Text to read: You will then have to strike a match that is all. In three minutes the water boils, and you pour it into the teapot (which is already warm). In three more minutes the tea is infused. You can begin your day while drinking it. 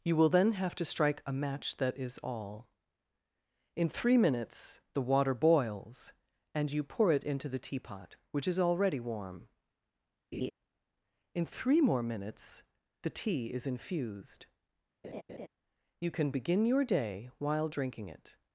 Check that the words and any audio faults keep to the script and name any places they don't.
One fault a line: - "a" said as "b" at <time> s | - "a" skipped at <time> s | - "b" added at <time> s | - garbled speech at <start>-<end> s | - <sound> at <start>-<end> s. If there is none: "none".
- laugh at 10.3-10.5 s
- laugh at 15.0-15.5 s